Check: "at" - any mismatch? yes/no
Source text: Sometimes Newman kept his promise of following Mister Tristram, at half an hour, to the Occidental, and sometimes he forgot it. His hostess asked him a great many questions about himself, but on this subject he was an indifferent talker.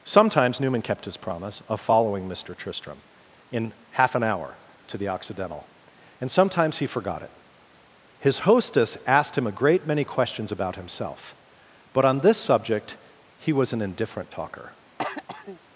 yes